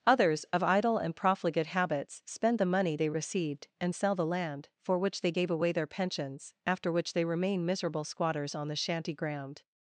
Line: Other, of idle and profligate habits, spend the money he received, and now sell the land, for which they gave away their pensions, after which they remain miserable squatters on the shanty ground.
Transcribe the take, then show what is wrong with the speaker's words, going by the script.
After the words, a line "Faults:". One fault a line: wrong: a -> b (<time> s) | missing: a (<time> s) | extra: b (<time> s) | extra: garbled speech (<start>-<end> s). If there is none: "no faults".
Others, of idle and profligate habits, spend the money they received, and sell the land, for which they gave away their pensions, after which they remain miserable squatters on the shanty ground.
Faults:
wrong: Other -> Others (0.1 s)
wrong: he -> they (3.0 s)
missing: now (4.0 s)